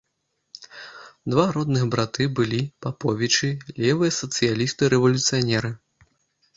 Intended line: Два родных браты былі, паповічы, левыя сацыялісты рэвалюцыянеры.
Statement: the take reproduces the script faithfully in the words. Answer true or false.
true